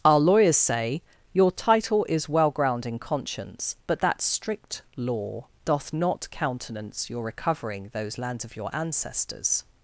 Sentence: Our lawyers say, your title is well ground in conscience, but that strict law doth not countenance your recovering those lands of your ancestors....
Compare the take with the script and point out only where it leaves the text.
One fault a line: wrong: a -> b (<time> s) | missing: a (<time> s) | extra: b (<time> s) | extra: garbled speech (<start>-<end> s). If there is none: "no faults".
no faults